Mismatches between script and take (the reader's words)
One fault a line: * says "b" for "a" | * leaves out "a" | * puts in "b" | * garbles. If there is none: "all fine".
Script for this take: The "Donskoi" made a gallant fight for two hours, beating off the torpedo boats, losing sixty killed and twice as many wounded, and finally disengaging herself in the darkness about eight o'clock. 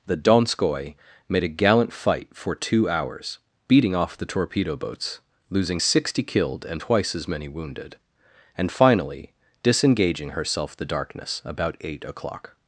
* leaves out "in"